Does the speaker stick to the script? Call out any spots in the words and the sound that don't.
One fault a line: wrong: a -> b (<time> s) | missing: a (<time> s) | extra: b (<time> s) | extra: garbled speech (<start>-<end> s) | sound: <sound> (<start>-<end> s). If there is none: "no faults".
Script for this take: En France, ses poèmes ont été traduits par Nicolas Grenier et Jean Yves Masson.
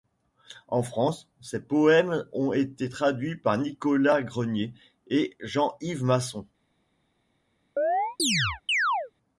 sound: chirp (7.8-9.1 s)